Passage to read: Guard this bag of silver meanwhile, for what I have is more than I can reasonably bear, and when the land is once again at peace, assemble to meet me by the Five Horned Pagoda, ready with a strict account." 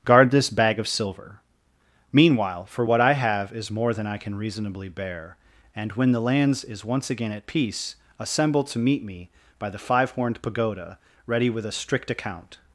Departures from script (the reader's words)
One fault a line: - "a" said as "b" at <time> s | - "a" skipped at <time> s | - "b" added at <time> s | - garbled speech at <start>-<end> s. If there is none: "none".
- "land" said as "lands" at 6.2 s